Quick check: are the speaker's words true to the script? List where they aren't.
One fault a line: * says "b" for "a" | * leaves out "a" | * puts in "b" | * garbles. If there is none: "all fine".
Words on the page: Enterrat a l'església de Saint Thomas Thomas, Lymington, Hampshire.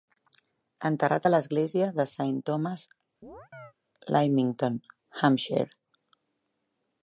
* leaves out "Thomas"